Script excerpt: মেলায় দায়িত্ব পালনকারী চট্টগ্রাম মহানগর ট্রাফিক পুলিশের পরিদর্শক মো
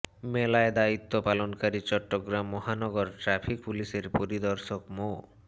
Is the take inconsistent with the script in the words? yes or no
no